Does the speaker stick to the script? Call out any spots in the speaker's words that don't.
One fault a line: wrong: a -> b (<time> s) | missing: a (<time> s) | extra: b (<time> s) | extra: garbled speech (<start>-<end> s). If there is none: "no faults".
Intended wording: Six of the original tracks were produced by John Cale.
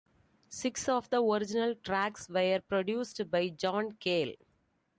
no faults